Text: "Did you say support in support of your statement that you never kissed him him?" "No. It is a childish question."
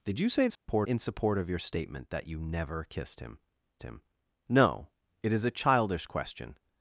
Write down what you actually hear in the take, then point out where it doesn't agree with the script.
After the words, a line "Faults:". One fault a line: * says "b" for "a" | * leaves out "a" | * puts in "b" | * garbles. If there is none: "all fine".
"Did you say support in support of your statement that you never kissed him him?" "No. It is a childish question."
Faults:
all fine